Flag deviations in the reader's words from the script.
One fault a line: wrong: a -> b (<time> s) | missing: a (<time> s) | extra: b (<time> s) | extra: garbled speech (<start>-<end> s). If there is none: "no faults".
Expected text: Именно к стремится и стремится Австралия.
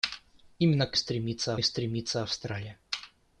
no faults